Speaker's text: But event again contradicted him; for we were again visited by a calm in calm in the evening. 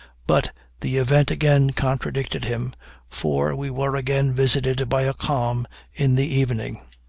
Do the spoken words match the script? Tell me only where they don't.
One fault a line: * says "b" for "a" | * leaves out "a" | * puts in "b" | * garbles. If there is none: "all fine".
* puts in "the"
* leaves out "calm in"